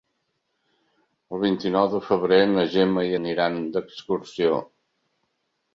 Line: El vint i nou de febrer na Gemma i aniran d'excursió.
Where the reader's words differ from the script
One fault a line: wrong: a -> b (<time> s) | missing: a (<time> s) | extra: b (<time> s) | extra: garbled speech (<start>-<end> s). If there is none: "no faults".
no faults